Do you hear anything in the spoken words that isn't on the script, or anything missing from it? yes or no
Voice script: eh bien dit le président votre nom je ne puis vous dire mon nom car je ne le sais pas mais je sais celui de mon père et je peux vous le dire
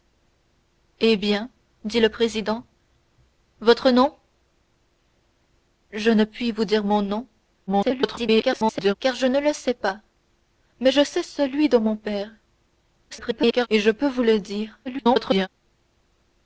yes